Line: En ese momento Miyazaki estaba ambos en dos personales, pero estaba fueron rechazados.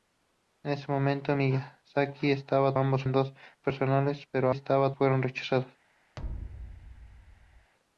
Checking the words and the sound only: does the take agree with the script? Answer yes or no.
no